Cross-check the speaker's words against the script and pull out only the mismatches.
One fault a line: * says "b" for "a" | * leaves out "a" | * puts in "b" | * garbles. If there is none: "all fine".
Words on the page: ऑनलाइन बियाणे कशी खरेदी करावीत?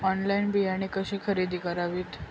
all fine